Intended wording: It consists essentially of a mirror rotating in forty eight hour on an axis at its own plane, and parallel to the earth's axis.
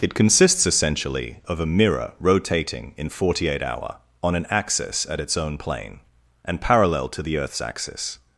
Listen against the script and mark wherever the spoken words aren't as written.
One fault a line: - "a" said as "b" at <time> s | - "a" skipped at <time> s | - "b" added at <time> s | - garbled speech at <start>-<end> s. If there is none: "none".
none